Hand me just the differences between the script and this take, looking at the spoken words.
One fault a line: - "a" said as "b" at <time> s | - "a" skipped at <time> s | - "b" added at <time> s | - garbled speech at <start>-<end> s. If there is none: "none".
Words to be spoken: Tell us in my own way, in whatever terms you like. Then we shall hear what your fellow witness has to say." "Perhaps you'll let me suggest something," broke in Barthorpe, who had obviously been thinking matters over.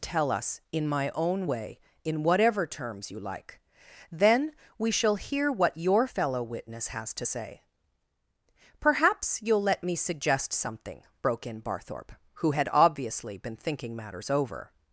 none